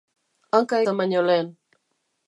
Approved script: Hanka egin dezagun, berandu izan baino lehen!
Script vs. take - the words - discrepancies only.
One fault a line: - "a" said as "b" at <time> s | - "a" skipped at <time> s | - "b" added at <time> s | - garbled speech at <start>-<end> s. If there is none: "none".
- "egin dezagun berandu" skipped at 0.8 s